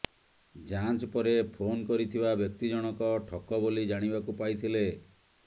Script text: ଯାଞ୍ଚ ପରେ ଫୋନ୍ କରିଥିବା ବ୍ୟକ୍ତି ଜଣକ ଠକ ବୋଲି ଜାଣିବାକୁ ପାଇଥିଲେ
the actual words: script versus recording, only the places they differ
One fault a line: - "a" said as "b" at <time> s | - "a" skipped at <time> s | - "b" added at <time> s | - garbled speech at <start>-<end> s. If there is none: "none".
none